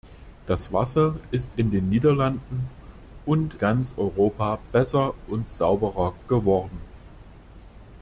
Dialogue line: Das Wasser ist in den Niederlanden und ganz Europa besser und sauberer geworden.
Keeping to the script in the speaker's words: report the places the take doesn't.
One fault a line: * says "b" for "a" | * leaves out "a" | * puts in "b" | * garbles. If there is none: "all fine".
all fine